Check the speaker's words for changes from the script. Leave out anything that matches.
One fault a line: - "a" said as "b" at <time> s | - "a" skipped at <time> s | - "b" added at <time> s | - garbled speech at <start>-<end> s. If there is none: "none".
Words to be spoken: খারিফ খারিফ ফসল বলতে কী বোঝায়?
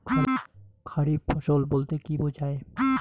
- "খারিফ" skipped at 1.2 s